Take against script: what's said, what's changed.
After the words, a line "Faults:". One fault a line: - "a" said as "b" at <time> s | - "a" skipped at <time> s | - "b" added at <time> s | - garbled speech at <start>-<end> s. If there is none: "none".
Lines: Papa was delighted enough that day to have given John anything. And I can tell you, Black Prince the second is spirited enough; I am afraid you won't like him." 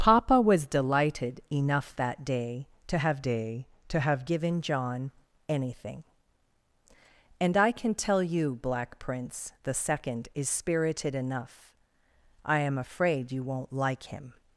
Papa was delighted enough that day to have day to have given John anything. And I can tell you, Black Prince the second is spirited enough; I am afraid you won't like him."
Faults:
- "day to have" added at 3.2 s